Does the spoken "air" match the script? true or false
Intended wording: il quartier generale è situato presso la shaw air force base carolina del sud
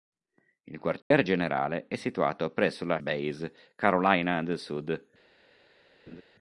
false